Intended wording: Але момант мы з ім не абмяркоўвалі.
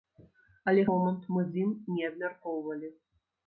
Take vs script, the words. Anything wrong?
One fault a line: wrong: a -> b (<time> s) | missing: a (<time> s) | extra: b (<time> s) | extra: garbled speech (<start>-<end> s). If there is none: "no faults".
no faults